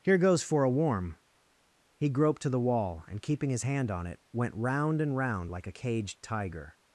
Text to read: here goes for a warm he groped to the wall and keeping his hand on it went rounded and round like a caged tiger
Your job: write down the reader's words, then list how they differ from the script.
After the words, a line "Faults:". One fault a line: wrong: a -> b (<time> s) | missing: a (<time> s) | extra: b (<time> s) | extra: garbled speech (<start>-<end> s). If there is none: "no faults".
here goes for a warm he groped to the wall and keeping his hand on it went round and round like a caged tiger
Faults:
wrong: rounded -> round (4.5 s)